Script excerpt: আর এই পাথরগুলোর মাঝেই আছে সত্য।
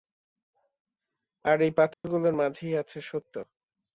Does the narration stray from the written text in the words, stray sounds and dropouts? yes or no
yes